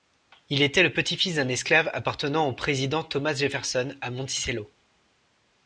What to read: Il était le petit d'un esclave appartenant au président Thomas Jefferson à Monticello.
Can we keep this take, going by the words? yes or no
no